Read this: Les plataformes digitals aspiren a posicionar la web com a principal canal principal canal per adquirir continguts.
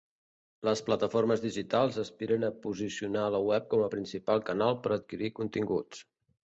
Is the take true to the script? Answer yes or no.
no